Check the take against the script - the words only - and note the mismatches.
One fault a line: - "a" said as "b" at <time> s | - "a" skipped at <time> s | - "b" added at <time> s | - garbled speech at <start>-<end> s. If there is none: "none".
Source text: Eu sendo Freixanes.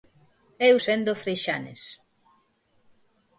none